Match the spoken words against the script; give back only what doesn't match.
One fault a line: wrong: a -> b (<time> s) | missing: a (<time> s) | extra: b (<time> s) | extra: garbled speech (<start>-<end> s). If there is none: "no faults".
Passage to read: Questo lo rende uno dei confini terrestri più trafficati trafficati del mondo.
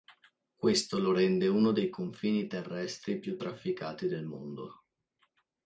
missing: trafficati (4.1 s)